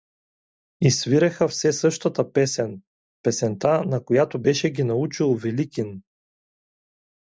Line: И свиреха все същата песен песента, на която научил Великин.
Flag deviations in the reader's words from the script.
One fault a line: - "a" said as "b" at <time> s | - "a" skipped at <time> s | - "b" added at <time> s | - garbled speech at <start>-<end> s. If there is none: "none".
- "беше ги" added at 4.4 s